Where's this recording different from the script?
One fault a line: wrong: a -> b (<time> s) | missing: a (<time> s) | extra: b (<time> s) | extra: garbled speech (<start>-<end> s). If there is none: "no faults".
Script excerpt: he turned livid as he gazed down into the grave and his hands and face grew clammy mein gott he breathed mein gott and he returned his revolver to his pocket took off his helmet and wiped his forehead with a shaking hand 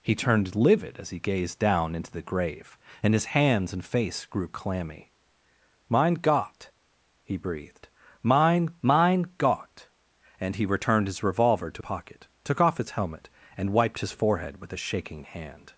extra: mein (8.8 s)
missing: his (11.8 s)